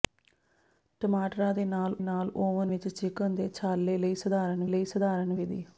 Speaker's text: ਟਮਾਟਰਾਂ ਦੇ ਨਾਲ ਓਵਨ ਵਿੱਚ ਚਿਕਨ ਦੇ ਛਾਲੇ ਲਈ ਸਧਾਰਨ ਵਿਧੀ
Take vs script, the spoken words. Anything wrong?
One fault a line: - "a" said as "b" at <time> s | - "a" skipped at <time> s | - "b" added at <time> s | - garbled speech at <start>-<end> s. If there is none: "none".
- "ਨਾਲ" added at 2.0 s
- "ਲਈ ਸਧਾਰਨ" added at 4.7 s